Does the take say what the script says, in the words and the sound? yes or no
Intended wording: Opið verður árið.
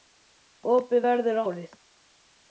yes